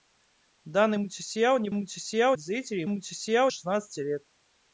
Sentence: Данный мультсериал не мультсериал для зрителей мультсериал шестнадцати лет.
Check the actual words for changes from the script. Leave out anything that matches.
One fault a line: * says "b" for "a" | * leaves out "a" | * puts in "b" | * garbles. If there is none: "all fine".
all fine